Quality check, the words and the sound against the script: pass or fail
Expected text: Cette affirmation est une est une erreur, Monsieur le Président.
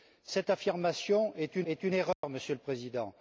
fail